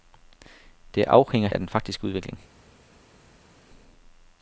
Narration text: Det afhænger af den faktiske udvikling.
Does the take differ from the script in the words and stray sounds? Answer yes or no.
no